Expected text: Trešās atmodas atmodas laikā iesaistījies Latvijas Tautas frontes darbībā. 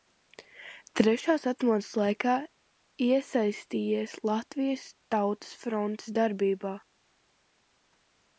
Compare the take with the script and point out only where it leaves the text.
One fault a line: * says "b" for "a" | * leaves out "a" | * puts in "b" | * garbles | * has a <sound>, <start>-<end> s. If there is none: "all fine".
* leaves out "atmodas"